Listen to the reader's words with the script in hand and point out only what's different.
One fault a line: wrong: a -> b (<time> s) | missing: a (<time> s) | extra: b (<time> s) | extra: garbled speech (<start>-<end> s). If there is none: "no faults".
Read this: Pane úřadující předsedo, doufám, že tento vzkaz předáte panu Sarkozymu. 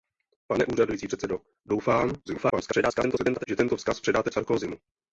extra: garbled speech (2.3-3.5 s)
missing: panu (4.3 s)